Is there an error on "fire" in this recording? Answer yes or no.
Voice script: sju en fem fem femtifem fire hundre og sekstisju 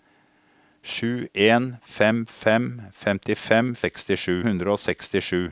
yes